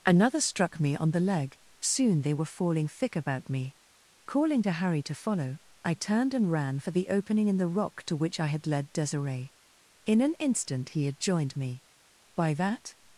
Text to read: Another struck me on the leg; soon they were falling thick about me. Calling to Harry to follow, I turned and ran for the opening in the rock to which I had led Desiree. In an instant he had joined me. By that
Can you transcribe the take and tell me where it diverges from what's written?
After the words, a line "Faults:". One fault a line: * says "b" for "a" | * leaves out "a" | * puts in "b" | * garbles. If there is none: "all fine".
Another struck me on the leg; soon they were falling thick about me. Calling to Harry to follow, I turned and ran for the opening in the rock to which I had led Desiree. In an instant he had joined me. By that
Faults:
all fine